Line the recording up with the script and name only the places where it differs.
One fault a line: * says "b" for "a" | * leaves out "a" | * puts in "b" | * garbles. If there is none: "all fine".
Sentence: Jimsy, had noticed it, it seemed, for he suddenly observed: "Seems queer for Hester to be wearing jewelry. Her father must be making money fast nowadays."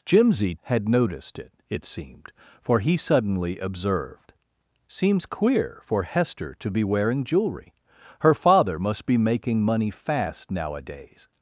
all fine